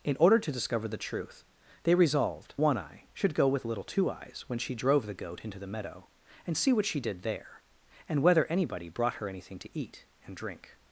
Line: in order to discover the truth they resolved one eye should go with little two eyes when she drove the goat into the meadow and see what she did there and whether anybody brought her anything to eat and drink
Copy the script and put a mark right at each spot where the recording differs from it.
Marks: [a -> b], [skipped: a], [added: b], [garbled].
in order to discover the truth they resolved one eye should go with little two eyes when she drove the goat into the meadow and see what she did there and whether anybody brought her anything to eat and drink